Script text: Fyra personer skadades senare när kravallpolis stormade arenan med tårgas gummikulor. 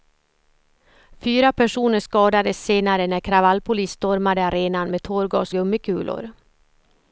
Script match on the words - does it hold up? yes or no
yes